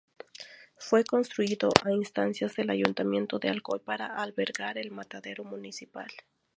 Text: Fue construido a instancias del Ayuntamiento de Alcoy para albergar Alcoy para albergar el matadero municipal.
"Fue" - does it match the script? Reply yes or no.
yes